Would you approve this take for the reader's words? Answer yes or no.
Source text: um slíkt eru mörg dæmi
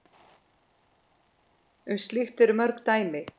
yes